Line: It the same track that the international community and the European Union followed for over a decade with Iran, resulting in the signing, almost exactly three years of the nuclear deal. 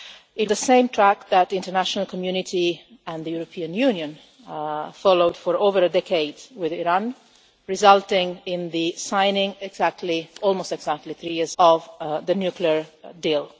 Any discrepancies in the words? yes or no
no